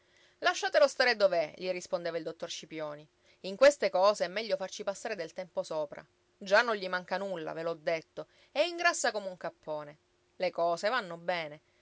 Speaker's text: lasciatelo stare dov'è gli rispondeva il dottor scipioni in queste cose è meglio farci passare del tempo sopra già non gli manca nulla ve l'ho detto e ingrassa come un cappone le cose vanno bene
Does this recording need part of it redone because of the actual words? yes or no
no